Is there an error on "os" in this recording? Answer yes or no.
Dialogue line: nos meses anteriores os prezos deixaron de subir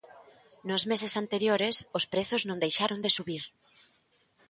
no